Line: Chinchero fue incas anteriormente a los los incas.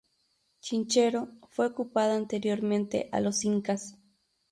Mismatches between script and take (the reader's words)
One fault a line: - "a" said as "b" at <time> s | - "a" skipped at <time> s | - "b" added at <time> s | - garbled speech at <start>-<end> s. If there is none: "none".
- "incas" said as "ocupada" at 1.7 s
- "los" skipped at 3.4 s